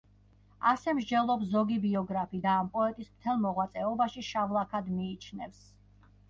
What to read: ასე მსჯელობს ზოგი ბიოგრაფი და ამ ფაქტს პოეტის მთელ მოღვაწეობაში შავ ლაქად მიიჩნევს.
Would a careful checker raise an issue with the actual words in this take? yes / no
yes